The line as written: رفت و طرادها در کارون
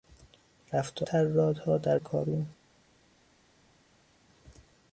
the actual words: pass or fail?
pass